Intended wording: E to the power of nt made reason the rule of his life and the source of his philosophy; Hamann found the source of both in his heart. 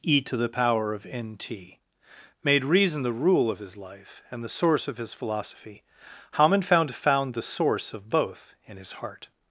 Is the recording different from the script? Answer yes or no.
yes